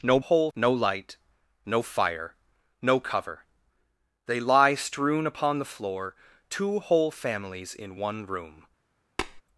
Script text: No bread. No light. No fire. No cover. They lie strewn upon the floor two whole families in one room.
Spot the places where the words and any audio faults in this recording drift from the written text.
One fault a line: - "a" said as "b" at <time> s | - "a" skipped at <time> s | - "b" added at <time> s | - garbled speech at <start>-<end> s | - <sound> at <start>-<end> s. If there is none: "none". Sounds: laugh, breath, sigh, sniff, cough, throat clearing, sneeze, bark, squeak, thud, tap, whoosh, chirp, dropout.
- "bread" said as "whole" at 0.2 s
- tap at 9.2-9.4 s